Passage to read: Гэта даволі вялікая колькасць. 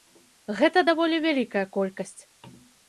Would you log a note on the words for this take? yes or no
no